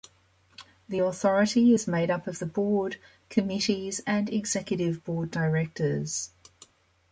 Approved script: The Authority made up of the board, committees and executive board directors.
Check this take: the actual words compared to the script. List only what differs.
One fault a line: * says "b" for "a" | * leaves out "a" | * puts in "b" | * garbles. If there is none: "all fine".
* puts in "is"